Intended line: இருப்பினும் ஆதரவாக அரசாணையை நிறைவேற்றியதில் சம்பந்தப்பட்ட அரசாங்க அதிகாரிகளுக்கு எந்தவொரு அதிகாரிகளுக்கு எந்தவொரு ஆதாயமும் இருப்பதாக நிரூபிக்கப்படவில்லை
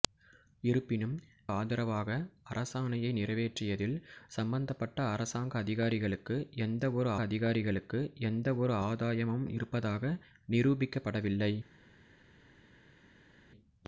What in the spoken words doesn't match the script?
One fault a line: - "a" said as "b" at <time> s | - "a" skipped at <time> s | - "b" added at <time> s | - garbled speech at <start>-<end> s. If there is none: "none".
none